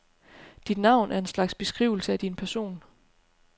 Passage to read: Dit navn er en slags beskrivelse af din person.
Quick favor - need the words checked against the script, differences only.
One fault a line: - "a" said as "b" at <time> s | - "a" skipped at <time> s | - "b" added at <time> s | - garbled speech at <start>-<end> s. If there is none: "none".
none